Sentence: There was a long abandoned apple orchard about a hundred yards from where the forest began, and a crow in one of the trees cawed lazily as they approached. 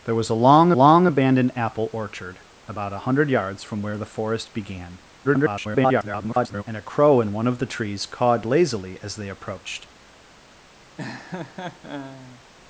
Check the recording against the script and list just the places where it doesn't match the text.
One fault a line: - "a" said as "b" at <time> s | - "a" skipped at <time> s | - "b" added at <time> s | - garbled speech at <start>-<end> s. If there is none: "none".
- "long" added at 0.7 s
- garbled speech at 5.2-6.6 s